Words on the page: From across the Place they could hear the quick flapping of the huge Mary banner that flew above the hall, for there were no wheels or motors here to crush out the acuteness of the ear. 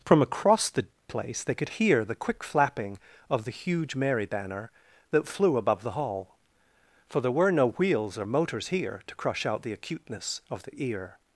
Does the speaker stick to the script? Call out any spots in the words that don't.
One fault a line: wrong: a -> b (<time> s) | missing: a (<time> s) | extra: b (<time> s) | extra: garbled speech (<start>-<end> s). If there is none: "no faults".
no faults